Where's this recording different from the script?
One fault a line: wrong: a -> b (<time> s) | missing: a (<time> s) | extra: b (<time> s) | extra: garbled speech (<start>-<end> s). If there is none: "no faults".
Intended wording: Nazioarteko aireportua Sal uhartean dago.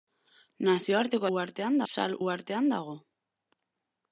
wrong: aireportua -> uhartean (1.4 s)